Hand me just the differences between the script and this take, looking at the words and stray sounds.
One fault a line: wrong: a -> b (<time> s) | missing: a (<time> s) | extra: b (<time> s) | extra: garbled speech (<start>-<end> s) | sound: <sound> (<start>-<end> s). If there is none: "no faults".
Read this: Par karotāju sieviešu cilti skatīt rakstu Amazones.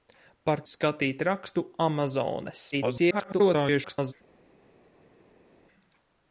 missing: karotāju sieviešu cilti (0.6 s)
extra: garbled speech (2.7-4.1 s)